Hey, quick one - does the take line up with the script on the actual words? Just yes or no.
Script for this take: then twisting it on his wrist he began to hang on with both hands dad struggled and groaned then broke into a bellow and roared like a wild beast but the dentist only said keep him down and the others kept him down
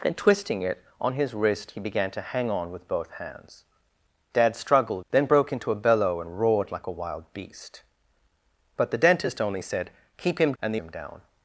no